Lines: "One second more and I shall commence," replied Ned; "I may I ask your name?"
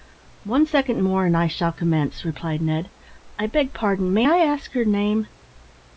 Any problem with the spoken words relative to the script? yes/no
yes